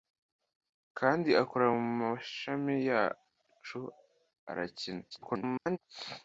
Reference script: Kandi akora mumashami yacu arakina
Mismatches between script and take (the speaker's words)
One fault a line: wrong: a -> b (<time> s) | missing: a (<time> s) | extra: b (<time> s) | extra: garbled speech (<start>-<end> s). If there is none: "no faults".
extra: garbled speech (5.1-5.8 s)